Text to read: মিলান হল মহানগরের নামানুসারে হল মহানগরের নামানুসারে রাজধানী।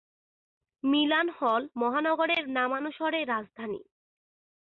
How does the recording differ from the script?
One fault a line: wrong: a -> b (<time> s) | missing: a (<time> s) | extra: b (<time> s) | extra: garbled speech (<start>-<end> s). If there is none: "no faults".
missing: হল মহানগরের নামানুসারে (3.2 s)